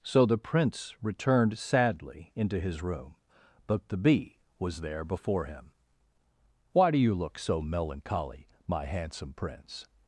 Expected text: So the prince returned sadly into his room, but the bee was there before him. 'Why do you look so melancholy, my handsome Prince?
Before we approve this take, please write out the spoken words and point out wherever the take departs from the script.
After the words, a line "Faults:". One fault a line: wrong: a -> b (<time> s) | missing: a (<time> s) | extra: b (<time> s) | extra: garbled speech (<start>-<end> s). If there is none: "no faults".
So the prince returned sadly into his room, but the bee was there before him. 'Why do you look so melancholy, my handsome Prince?
Faults:
no faults